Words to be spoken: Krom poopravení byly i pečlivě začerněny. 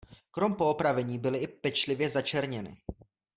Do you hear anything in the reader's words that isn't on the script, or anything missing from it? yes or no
no